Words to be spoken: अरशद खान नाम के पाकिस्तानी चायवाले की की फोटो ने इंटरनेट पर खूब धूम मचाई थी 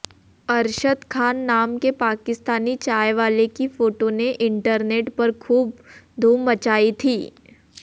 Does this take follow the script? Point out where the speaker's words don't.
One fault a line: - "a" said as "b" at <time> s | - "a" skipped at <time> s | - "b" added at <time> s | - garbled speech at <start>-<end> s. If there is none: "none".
- "की" skipped at 3.7 s